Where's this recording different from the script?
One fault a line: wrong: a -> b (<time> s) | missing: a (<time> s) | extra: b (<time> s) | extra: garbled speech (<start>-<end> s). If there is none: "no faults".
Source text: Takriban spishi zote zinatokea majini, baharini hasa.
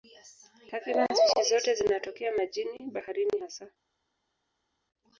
no faults